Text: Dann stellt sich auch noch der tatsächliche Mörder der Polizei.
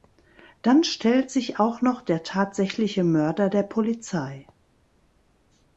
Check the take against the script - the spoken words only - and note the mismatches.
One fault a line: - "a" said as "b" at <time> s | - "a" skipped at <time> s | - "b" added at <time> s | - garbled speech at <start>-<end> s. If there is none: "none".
none